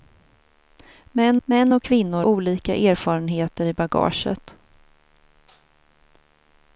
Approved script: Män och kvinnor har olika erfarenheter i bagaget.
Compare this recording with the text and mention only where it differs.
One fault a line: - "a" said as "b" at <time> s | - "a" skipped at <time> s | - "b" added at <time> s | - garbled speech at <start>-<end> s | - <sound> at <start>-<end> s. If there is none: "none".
- "män" added at 1.4 s
- "har" skipped at 2.2 s